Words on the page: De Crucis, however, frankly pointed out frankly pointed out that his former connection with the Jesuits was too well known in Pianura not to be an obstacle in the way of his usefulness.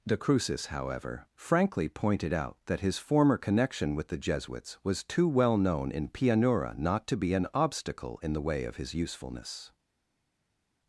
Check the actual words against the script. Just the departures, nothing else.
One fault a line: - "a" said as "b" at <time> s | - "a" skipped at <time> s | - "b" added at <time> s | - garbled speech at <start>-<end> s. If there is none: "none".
- "frankly pointed out" skipped at 2.6 s